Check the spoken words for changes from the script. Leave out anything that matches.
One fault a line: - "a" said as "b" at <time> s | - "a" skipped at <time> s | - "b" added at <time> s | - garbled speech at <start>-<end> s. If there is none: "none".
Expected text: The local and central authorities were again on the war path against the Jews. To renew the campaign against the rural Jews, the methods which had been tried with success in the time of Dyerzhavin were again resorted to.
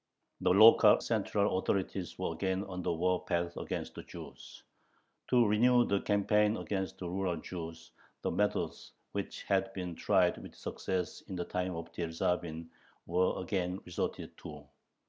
- "and" skipped at 1.0 s